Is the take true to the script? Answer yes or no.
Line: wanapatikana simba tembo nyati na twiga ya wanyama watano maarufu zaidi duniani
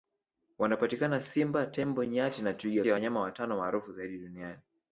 yes